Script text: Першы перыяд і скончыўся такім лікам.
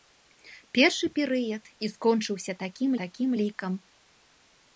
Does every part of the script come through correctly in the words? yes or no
no